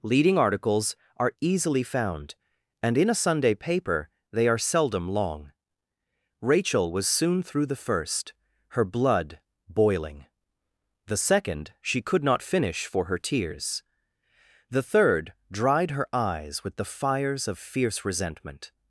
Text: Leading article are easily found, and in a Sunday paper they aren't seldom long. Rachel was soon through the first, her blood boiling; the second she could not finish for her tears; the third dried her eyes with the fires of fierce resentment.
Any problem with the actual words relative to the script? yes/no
yes